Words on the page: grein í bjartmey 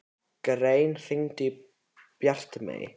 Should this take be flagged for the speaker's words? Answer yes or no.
yes